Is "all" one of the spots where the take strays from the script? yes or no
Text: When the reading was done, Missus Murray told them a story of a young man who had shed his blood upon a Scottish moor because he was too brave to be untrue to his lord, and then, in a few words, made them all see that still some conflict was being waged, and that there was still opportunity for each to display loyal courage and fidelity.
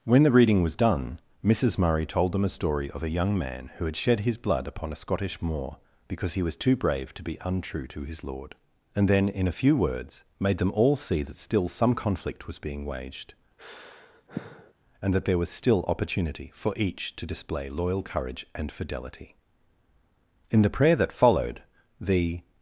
no